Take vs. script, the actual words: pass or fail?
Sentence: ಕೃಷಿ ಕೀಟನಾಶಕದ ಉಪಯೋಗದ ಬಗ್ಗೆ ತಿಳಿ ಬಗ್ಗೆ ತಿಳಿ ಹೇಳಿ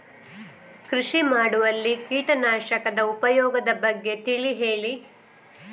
fail